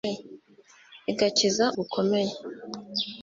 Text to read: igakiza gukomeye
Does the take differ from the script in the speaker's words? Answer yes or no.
no